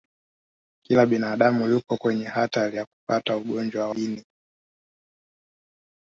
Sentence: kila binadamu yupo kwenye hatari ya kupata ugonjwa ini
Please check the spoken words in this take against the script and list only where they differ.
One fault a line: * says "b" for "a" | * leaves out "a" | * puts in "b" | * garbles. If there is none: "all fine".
all fine